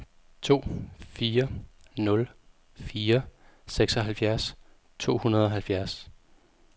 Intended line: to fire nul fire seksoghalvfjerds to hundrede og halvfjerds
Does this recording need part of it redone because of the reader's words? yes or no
no